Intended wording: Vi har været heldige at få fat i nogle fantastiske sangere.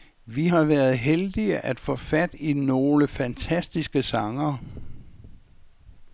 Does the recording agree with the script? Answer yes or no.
yes